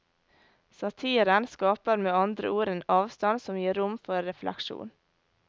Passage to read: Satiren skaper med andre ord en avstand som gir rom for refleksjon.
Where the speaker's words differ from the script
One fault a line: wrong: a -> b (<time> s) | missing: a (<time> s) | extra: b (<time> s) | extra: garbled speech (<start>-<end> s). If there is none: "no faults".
no faults